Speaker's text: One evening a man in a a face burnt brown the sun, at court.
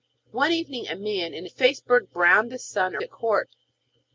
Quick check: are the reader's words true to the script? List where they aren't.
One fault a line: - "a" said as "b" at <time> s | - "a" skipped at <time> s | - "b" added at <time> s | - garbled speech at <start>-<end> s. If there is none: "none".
none